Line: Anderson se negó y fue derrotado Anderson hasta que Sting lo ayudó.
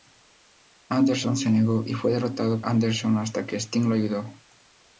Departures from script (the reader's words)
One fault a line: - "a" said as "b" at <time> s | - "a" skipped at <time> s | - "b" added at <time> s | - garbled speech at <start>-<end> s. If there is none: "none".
none